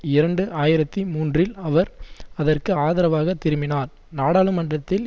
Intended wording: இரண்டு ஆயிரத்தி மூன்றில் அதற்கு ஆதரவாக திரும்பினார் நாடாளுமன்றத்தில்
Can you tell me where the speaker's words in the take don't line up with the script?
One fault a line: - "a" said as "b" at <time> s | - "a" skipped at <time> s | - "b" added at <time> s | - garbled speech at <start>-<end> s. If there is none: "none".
- "அவர்" added at 1.6 s